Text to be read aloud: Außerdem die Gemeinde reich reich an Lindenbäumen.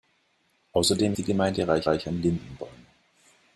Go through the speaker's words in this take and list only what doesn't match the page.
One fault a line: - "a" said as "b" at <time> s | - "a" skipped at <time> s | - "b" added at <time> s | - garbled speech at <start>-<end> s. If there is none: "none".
none